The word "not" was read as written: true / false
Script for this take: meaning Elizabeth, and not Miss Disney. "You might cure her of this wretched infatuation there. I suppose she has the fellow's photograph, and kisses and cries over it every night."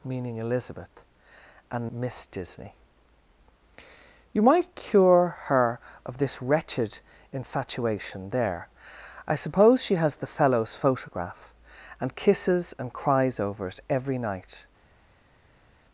false